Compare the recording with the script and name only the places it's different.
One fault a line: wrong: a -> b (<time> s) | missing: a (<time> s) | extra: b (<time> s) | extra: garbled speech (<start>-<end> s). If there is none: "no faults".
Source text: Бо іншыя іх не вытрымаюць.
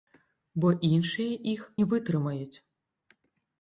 no faults